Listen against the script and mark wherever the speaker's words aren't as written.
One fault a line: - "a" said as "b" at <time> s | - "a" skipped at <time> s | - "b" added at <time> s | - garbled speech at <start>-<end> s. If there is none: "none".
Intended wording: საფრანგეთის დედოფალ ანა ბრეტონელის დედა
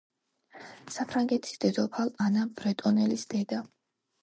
none